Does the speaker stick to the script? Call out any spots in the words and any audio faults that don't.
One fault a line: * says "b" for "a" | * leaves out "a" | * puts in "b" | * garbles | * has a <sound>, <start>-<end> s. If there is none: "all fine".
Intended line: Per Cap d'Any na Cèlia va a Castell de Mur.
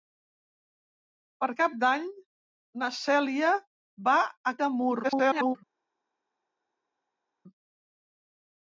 * leaves out "Castell"
* garbles